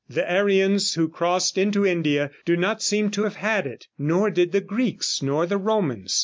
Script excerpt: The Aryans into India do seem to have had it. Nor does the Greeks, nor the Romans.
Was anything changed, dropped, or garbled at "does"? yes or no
yes